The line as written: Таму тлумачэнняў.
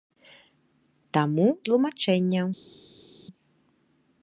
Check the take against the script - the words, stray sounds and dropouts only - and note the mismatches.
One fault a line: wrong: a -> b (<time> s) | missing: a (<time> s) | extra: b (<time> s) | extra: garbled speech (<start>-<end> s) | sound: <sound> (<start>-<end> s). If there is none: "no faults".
no faults